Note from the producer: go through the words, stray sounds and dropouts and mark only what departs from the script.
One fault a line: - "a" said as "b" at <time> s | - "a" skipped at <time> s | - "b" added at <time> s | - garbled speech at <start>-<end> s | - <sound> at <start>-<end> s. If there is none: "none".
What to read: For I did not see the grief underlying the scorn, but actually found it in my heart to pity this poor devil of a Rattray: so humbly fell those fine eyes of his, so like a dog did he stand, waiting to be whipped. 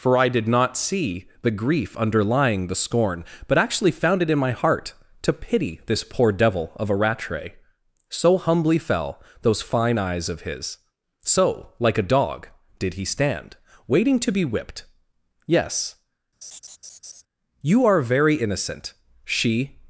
- "Yes you are very innocent she" added at 15.5 s
- laugh at 16.4-17.2 s